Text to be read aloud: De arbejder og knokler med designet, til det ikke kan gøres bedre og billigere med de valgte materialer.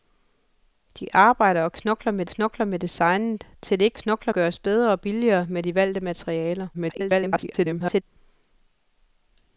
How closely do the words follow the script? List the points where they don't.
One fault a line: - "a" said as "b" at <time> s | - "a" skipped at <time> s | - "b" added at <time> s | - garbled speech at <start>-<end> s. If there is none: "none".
- "knokler med" added at 2.2 s
- "kan" said as "knokler" at 3.9 s
- garbled speech at 6.7-8.0 s